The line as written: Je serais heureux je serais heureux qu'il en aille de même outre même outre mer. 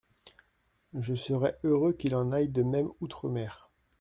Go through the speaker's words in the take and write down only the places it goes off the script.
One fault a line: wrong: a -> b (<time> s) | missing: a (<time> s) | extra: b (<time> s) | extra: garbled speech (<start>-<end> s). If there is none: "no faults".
missing: je serais heureux (1.9 s)
missing: même outre (3.3 s)